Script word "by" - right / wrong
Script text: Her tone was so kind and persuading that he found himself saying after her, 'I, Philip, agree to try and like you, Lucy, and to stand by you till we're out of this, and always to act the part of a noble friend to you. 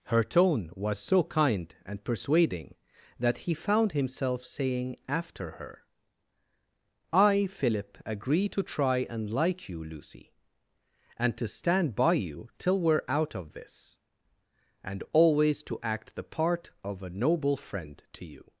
right